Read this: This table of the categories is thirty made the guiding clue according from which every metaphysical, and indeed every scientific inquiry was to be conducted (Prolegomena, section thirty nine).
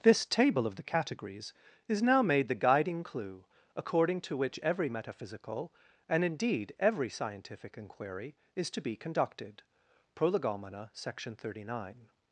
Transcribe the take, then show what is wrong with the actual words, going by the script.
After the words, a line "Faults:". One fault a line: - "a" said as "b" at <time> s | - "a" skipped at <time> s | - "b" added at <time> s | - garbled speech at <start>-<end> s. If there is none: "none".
This table of the categories is now made the guiding clue according to which every metaphysical, and indeed every scientific inquiry is to be conducted (Prolegomena, section thirty nine).
Faults:
- "thirty" said as "now" at 2.0 s
- "from" said as "to" at 4.2 s
- "was" said as "is" at 8.5 s